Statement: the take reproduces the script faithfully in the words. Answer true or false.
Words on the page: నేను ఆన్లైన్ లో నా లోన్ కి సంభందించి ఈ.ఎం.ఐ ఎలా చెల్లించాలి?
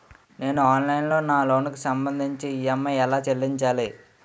true